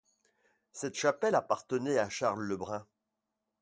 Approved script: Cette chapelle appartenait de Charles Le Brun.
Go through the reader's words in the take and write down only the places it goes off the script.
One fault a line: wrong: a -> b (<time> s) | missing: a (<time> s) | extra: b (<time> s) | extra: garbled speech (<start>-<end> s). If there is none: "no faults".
wrong: de -> à (2.0 s)